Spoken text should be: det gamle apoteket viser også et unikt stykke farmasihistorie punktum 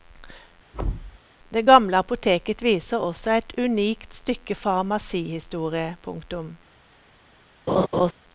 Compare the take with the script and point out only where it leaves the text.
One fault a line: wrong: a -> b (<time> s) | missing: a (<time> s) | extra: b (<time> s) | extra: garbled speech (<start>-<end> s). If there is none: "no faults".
no faults